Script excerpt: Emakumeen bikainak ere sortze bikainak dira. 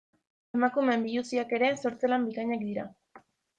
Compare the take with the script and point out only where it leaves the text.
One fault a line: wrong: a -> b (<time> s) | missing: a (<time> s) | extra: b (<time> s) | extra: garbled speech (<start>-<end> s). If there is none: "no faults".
wrong: bikainak -> biluziak (1.1 s)
extra: lan (2.2 s)